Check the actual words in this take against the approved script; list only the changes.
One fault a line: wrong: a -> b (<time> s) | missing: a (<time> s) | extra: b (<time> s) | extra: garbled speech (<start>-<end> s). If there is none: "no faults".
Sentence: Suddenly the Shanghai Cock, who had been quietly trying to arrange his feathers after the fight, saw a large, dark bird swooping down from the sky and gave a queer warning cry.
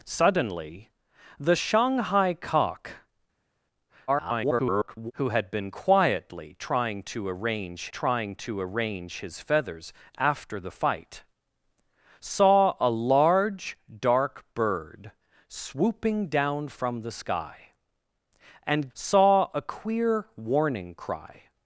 extra: garbled speech (4.1-5.1 s)
extra: trying to arrange (7.9 s)
wrong: gave -> saw (18.9 s)